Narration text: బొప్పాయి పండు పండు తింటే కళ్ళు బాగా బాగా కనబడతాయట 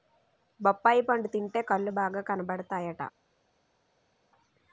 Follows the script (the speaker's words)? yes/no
no